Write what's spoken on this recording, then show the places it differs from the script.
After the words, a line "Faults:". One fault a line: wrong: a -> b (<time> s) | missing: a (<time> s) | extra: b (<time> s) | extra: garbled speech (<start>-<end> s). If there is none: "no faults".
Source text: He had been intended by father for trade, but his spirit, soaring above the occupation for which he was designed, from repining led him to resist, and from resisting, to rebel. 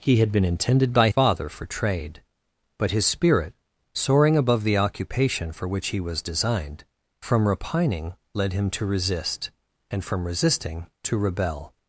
He had been intended by father for trade, but his spirit, soaring above the occupation for which he was designed, from repining led him to resist, and from resisting, to rebel.
Faults:
no faults